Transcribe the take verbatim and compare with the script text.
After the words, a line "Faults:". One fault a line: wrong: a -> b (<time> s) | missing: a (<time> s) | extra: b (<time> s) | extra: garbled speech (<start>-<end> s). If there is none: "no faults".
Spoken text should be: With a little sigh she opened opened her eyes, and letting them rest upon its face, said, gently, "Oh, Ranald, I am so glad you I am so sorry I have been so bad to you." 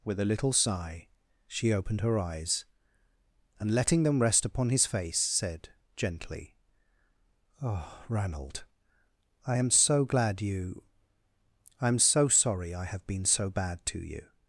With a little sigh she opened her eyes, and letting them rest upon his face, said, gently, "Oh, Ranald, I am so glad you I am so sorry I have been so bad to you."
Faults:
missing: opened (2.0 s)
wrong: its -> his (4.7 s)